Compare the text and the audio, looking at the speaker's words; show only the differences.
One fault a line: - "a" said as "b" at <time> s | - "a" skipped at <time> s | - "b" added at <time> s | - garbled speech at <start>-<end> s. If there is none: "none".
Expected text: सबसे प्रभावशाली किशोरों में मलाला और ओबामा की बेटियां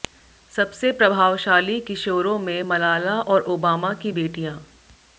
none